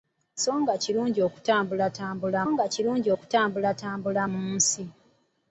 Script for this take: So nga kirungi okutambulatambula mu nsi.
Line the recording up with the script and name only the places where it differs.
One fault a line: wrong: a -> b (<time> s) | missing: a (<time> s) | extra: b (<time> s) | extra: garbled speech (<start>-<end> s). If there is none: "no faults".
extra: nga kirungi okutambulatambula (2.5 s)